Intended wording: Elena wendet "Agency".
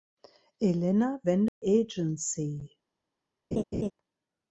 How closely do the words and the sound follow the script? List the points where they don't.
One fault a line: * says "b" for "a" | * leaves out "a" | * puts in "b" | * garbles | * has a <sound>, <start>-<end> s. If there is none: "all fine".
* has a dropout, 1.5-1.6 s
* has a laugh, 3.5-3.9 s